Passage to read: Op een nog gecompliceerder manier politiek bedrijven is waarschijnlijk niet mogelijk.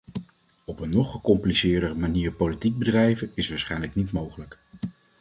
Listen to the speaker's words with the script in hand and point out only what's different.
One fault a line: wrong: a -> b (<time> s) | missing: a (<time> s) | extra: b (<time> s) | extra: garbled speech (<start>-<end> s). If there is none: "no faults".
no faults